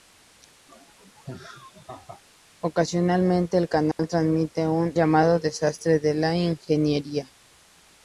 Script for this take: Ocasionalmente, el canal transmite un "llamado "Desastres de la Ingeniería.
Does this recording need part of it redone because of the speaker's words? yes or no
no